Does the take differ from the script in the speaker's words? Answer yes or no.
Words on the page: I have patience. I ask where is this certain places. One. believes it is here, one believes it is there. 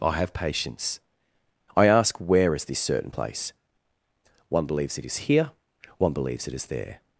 yes